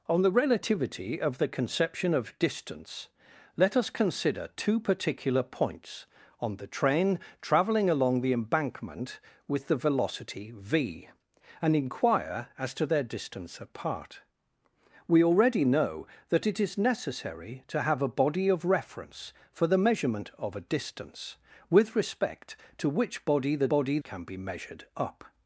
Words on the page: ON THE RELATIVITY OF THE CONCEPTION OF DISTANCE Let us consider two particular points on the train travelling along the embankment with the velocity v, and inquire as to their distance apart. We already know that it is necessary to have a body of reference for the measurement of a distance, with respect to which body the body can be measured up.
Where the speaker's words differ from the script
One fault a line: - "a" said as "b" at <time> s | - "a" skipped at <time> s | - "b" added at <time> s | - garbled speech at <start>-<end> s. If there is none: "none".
none